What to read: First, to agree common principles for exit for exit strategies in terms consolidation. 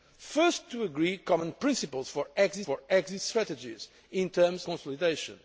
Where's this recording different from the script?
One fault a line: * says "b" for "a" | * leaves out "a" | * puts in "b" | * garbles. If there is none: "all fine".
all fine